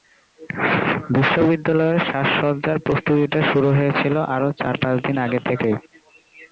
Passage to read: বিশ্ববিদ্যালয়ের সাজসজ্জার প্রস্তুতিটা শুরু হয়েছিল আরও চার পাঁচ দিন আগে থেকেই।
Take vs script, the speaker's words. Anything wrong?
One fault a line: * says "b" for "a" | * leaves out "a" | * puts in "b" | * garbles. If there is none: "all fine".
all fine